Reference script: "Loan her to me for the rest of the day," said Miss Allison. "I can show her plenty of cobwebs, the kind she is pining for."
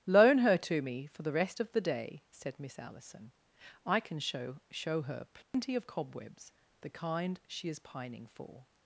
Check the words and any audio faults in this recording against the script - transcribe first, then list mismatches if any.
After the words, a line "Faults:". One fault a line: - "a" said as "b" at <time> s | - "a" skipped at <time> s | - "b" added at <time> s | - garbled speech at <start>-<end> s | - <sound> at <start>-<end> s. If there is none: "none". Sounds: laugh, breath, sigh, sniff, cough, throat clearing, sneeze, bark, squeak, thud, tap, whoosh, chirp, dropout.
"Loan her to me for the rest of the day," said Miss Allison. "I can show show her plenty of cobwebs, the kind she is pining for."
Faults:
- "show" added at 4.7 s
- dropout at 5.4-5.5 s